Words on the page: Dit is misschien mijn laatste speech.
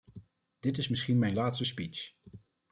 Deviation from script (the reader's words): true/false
false